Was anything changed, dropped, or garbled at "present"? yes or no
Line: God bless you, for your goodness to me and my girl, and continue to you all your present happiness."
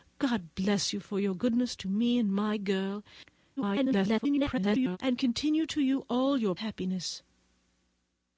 yes